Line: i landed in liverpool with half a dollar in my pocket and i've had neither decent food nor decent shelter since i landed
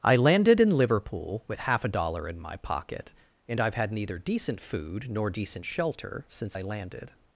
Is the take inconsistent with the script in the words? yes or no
no